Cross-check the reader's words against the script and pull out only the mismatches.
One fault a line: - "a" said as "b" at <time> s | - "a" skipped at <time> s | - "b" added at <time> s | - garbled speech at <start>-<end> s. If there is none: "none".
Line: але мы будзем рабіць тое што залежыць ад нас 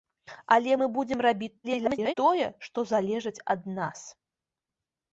- garbled speech at 1.6-2.1 s